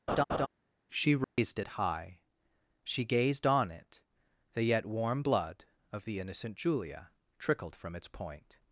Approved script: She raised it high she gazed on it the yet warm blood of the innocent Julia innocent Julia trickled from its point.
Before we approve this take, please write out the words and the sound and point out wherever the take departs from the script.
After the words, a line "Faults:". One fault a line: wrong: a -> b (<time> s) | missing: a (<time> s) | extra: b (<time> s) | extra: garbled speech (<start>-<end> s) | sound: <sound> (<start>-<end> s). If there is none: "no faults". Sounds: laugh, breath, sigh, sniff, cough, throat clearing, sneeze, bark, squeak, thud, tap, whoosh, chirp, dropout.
She raised it high she gazed on it the yet warm blood of the innocent Julia trickled from its point.
Faults:
sound: laugh (0.1-0.5 s)
sound: dropout (1.2-1.4 s)
missing: innocent Julia (7.1 s)